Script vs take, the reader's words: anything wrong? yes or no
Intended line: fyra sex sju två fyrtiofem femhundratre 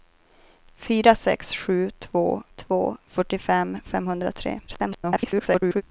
yes